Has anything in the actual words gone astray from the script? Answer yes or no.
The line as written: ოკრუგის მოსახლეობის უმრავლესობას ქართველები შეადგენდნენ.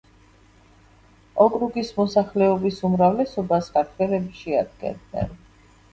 no